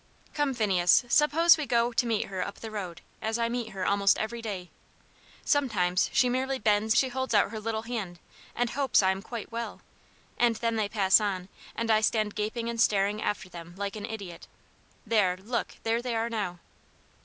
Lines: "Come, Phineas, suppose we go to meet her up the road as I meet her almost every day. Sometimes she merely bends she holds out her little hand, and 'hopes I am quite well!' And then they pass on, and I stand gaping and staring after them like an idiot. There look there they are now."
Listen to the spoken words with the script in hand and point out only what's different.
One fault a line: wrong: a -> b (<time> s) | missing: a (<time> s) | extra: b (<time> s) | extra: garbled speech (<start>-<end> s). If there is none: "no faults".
no faults